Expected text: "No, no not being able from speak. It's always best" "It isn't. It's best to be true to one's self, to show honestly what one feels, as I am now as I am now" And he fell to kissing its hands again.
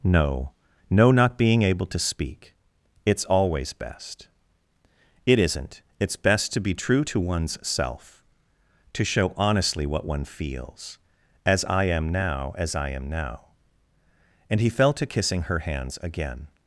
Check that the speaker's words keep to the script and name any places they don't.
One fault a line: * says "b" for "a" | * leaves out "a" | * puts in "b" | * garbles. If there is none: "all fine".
* says "to" for "from"
* says "her" for "its"